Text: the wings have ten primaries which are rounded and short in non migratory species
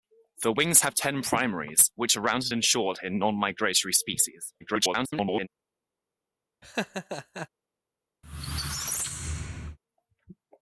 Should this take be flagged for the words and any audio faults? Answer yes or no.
yes